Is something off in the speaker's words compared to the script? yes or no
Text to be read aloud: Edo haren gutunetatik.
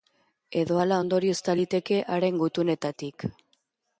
yes